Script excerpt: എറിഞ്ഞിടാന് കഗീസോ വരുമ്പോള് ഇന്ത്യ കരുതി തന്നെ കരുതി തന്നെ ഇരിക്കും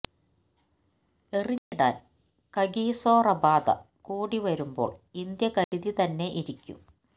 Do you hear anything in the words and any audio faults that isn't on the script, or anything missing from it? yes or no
yes